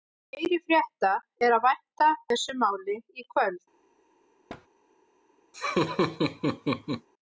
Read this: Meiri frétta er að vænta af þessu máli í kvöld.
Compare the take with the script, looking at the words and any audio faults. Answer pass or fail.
fail